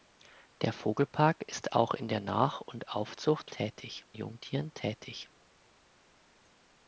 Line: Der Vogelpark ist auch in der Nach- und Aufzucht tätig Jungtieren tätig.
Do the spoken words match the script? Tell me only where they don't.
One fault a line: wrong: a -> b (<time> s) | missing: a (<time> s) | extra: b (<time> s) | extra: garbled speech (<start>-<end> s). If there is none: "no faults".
no faults